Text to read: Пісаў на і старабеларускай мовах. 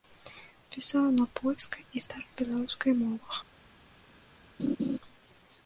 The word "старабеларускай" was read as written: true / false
true